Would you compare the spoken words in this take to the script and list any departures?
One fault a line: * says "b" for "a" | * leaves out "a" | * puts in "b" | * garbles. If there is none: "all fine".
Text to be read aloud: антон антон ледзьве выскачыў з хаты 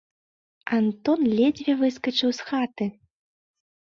* leaves out "антон"